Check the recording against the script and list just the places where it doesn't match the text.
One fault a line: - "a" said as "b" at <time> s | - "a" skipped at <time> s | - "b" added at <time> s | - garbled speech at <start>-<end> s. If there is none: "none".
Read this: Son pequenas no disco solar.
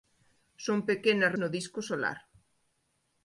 none